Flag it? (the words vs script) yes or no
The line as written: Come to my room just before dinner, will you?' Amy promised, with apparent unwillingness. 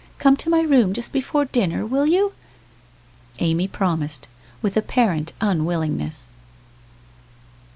no